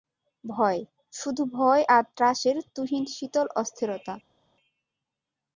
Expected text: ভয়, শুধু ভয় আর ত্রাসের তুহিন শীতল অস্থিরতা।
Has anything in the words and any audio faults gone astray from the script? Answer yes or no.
no